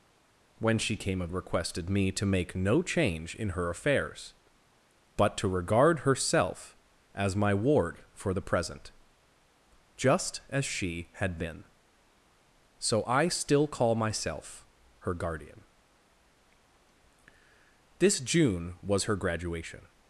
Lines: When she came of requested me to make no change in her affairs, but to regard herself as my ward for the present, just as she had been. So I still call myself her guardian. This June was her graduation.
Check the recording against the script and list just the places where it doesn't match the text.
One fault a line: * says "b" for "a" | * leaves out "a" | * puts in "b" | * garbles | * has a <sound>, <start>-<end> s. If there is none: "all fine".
all fine